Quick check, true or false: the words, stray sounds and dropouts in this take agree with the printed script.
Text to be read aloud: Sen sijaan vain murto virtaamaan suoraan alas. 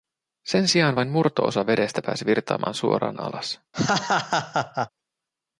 false